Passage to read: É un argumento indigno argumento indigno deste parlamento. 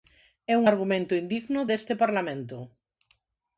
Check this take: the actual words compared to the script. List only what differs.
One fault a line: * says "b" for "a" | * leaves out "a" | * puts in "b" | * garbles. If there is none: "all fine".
* leaves out "argumento indigno"